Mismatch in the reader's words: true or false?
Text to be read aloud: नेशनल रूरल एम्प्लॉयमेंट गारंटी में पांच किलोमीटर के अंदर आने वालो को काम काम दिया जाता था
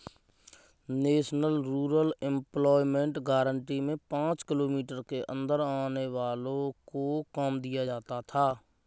true